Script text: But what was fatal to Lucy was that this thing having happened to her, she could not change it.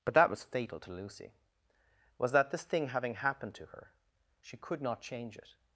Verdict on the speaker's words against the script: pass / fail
fail